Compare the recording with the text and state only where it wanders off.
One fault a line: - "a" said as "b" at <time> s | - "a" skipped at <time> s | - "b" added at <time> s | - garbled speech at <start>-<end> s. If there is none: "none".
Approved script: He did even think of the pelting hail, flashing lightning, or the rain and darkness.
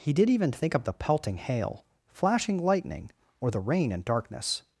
none